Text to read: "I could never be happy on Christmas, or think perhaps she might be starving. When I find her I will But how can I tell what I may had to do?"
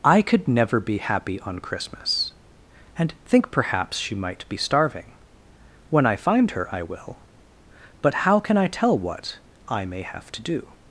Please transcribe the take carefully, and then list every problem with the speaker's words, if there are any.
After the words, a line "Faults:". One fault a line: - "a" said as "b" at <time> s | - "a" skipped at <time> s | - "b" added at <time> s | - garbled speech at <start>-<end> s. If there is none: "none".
"I could never be happy on Christmas, and think perhaps she might be starving. When I find her I will But how can I tell what I may have to do?"
Faults:
- "or" said as "and" at 3.0 s
- "had" said as "have" at 10.0 s